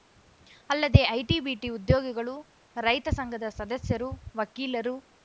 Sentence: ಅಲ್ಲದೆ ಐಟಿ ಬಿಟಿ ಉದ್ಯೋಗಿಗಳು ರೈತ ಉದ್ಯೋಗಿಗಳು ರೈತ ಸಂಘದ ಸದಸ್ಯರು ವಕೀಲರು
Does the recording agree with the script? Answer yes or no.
no